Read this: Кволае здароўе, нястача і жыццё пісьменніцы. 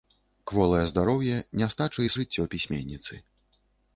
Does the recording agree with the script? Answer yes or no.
yes